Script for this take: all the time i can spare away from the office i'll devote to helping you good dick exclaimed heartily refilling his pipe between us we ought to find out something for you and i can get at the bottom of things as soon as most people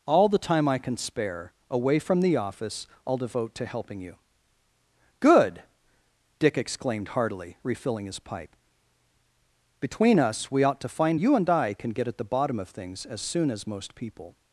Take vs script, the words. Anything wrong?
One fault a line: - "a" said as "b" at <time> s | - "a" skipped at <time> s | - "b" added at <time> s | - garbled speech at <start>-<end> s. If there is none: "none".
- "out something for" skipped at 11.2 s